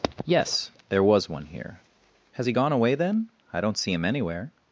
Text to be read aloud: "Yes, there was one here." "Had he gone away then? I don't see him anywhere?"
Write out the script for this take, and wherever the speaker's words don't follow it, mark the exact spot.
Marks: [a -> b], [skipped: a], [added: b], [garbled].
"Yes, there was one here." ["Had -> Has] he gone away then? I don't see him anywhere?"